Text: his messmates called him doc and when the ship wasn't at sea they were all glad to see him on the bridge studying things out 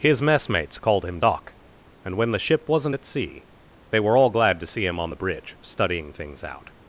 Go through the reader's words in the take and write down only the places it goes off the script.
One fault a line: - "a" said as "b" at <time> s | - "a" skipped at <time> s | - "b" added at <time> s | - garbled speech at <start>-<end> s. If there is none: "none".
none